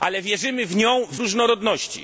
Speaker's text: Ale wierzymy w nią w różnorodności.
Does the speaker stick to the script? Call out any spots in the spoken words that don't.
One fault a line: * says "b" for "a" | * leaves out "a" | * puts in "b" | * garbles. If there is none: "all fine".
all fine